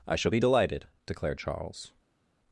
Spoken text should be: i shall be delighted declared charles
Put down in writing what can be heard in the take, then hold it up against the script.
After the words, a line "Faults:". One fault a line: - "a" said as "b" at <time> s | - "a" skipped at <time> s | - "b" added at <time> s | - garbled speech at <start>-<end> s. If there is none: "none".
i shall be delighted declared charles
Faults:
none